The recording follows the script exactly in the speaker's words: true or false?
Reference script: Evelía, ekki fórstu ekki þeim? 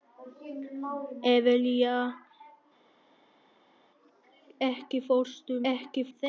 true